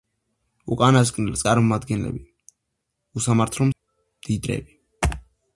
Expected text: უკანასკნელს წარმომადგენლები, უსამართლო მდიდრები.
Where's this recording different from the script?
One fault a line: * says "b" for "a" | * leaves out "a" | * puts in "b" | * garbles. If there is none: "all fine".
all fine